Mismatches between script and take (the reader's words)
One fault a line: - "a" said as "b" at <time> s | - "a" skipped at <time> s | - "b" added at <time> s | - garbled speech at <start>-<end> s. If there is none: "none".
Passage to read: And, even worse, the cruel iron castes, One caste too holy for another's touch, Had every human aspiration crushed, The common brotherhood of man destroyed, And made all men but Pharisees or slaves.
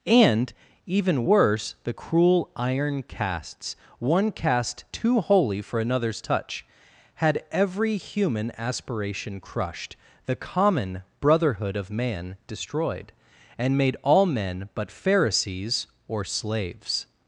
none